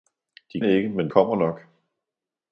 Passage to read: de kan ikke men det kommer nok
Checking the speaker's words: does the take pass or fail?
fail